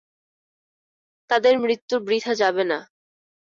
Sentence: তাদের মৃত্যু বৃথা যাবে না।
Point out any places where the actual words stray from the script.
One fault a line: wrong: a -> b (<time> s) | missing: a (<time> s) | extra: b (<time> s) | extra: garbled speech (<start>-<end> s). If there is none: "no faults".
no faults